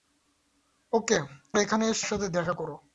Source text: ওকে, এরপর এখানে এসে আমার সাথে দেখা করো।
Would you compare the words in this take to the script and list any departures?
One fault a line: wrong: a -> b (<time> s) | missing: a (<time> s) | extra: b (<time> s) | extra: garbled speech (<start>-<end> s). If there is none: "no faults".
missing: এরপর (1.2 s)
missing: আমার (2.1 s)